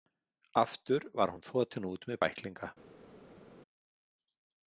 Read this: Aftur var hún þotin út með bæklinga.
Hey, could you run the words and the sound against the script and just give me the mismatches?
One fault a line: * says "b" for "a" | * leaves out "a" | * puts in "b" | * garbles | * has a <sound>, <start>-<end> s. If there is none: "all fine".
all fine